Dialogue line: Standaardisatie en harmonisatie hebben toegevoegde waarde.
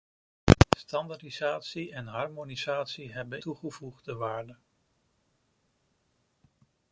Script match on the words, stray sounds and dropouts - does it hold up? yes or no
yes